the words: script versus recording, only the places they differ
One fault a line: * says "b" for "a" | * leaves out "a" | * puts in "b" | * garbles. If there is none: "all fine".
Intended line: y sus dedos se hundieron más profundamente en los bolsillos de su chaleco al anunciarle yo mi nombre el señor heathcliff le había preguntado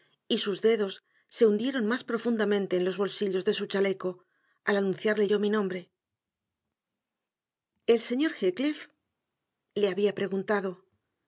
all fine